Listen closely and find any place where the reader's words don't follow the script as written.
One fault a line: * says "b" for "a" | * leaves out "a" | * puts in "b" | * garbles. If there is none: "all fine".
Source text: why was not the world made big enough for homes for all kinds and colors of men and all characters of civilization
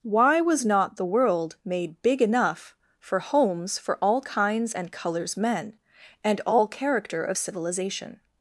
* leaves out "of"
* says "character" for "characters"